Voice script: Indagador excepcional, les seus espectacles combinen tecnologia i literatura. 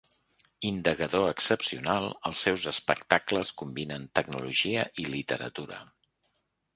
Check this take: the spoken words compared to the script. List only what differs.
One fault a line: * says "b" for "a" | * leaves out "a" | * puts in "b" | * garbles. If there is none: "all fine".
* says "els" for "les"